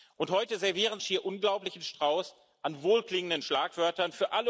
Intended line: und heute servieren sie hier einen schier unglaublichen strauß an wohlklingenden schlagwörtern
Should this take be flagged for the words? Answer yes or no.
yes